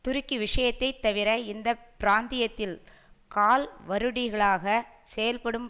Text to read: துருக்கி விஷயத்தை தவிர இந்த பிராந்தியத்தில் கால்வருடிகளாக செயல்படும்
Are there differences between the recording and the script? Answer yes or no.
no